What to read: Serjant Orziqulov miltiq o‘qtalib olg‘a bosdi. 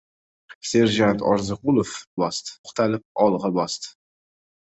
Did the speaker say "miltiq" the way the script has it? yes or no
no